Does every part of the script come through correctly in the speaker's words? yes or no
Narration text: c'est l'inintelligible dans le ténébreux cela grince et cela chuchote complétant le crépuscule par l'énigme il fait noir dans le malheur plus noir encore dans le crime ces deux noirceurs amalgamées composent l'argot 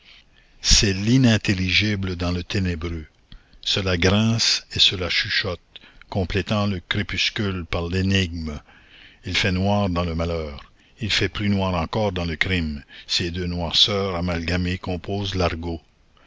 no